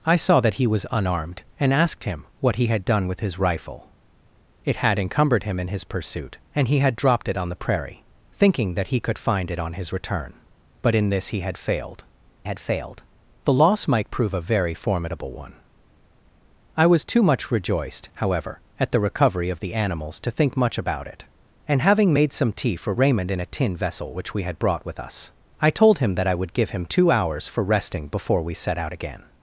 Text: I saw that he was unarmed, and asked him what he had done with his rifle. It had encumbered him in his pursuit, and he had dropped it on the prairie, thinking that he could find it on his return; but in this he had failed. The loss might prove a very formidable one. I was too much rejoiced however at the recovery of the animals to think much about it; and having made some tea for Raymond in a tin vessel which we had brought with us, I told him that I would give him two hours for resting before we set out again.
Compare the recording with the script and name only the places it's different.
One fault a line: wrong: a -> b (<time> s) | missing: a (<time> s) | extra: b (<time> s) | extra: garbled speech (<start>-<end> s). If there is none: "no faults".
extra: had failed (12.4 s)